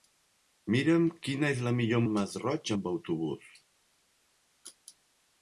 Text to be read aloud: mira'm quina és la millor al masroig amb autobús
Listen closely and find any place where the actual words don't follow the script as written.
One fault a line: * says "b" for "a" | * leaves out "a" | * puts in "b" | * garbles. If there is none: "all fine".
all fine